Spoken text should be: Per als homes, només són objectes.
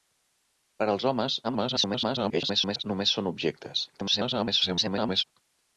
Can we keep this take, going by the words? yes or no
no